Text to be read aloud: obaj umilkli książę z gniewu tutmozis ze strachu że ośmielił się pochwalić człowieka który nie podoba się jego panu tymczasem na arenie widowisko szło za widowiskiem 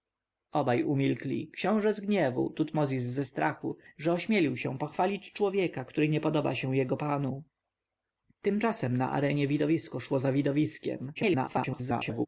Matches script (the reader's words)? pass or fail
fail